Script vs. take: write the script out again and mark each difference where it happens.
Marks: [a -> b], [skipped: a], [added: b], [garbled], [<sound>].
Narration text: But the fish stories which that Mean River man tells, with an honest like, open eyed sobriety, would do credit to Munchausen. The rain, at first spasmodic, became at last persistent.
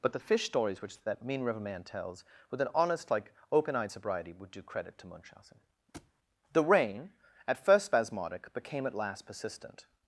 But the fish stories which that Mean River man tells, with an honest like, open eyed sobriety, would do credit to Munchausen. [thud] The rain, at first spasmodic, became at last persistent.